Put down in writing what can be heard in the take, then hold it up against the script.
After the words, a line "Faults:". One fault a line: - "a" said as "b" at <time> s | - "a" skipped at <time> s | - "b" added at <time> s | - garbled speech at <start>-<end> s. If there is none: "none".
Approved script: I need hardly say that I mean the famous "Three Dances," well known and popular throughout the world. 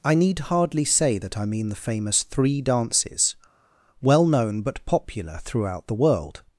I need hardly say that I mean the famous "Three Dances," well known but popular throughout the world.
Faults:
- "and" said as "but" at 4.6 s